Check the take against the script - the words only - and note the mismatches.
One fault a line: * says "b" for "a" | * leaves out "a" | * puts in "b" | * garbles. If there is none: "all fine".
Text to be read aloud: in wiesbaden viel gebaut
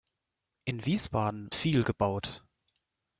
all fine